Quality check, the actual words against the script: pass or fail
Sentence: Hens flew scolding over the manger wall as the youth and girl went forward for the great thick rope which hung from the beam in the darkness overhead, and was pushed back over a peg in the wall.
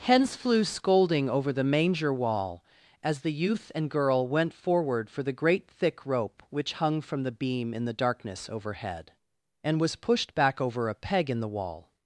pass